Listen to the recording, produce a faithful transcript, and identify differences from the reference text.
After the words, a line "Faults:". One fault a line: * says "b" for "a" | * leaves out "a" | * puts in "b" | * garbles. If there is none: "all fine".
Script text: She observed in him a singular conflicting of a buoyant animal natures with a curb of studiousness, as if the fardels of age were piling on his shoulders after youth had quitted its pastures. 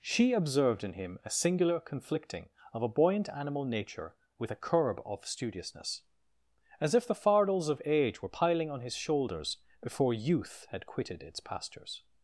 She observed in him a singular conflicting of a buoyant animal nature with a curb of studiousness, as if the fardels of age were piling on his shoulders before youth had quitted its pastures.
Faults:
* says "nature" for "natures"
* says "before" for "after"